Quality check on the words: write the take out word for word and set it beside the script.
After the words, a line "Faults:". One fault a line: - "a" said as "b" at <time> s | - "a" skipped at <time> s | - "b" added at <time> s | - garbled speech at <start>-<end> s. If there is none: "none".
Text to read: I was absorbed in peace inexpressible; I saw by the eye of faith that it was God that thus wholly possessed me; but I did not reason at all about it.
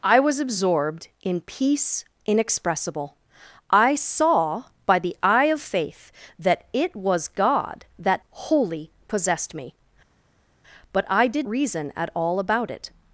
I was absorbed in peace inexpressible; I saw by the eye of faith that it was God that wholly possessed me; but I did reason at all about it.
Faults:
- "thus" skipped at 8.2 s
- "not" skipped at 11.5 s